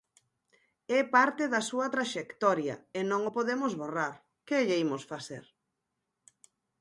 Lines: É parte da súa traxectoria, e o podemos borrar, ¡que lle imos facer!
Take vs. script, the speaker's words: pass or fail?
fail